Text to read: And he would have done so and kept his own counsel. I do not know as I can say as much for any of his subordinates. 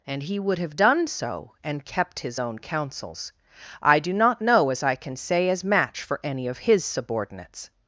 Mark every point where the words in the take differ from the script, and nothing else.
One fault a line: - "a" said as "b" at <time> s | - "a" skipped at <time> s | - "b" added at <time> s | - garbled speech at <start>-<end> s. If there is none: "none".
- "counsel" said as "counsels" at 2.6 s
- "much" said as "match" at 5.6 s